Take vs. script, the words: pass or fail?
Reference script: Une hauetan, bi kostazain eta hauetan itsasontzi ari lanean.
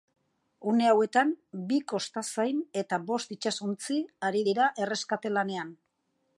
fail